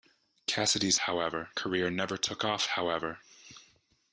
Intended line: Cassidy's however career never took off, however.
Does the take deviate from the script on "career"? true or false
false